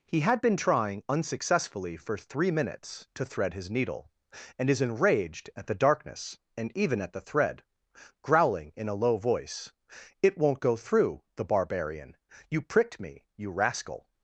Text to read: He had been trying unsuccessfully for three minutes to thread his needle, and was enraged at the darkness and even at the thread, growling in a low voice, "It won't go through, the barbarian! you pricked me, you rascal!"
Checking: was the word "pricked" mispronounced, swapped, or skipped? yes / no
no